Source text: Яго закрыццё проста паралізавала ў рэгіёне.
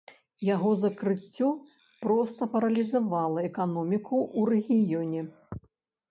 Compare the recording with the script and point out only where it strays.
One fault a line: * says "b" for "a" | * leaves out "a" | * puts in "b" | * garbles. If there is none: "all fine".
* puts in "эканоміку"